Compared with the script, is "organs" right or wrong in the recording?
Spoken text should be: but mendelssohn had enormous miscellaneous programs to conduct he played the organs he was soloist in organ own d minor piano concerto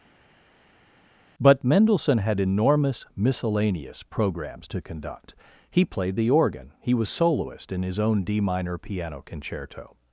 wrong